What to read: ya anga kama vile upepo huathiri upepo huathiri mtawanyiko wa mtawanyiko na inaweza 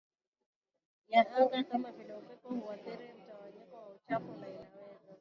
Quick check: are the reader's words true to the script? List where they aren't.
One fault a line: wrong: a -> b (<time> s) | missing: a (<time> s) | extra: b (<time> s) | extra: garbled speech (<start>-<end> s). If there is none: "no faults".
missing: upepo huathiri (3.1 s)
wrong: mtawanyiko -> uchafu (3.9 s)